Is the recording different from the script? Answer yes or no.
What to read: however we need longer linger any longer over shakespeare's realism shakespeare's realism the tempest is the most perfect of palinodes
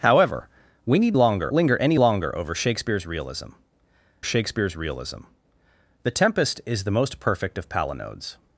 no